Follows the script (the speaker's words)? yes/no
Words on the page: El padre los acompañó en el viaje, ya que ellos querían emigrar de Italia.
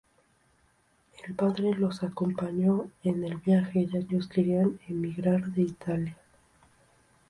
no